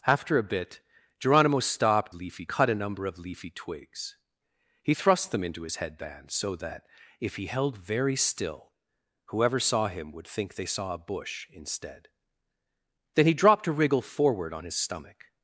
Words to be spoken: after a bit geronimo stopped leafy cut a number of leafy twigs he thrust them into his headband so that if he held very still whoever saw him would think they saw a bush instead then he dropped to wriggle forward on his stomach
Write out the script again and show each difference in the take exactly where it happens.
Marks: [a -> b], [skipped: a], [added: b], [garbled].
after a bit geronimo stopped leafy cut a number of leafy twigs he thrust them into his headband so that if he held very still whoever saw him would think they saw a bush instead then he dropped to wriggle forward on his stomach